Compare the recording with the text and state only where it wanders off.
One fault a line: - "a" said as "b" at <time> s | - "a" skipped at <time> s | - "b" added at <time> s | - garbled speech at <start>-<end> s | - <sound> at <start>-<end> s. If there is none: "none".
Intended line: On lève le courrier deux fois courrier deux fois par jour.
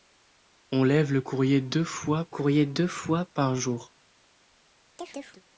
- chirp at 5.0-5.4 s